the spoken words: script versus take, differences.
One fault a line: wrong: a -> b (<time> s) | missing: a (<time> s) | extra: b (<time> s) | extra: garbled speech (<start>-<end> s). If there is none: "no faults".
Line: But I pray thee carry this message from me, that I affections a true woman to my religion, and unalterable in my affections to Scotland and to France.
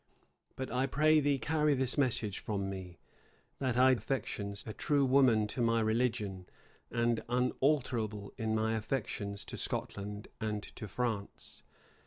no faults